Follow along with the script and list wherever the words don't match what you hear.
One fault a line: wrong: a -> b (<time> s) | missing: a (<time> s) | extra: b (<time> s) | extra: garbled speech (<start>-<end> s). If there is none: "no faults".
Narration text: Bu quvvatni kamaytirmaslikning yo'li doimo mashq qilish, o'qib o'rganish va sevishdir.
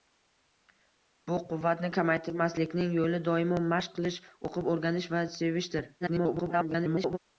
extra: garbled speech (6.0-7.2 s)